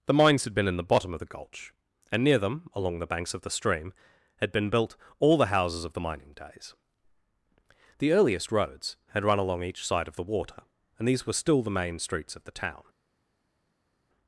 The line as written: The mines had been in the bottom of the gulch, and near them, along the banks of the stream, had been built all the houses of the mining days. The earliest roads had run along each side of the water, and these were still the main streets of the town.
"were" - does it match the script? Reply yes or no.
yes